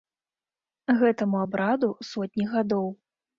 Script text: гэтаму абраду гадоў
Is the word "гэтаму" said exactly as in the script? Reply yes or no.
yes